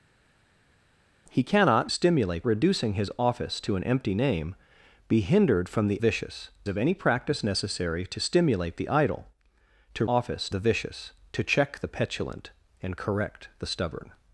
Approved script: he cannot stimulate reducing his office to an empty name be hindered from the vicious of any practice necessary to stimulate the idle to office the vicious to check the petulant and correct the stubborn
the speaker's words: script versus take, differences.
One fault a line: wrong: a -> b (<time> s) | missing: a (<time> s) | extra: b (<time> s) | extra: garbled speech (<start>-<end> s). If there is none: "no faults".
no faults